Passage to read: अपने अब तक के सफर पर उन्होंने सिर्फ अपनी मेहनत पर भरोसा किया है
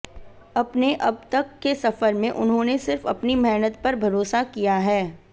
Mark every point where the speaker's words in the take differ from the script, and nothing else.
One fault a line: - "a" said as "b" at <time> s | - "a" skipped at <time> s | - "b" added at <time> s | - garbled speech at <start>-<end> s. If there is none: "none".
- "पर" said as "में" at 2.1 s